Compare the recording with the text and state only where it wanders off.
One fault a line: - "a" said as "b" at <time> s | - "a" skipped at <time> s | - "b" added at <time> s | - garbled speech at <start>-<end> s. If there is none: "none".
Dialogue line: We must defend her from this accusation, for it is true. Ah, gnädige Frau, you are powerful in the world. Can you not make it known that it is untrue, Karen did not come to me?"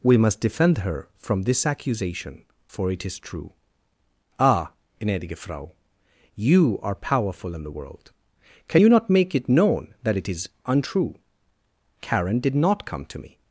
none